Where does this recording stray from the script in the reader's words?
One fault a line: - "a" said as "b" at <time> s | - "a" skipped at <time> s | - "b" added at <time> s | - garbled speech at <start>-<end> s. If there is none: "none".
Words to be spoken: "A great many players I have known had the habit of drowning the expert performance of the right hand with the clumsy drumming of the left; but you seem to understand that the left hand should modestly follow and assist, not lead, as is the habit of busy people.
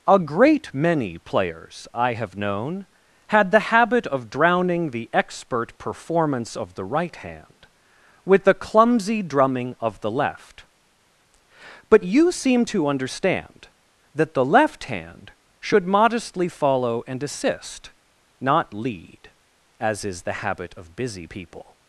none